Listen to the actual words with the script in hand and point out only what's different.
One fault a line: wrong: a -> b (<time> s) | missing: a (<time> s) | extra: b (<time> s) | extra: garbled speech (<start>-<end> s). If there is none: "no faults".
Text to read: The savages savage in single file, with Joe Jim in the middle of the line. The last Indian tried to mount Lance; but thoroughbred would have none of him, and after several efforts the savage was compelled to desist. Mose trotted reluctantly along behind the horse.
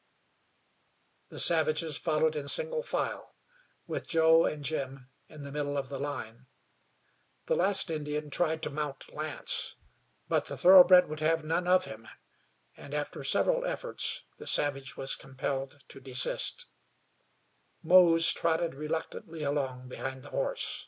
wrong: savage -> followed (2.0 s)
extra: and (4.4 s)
extra: the (10.4 s)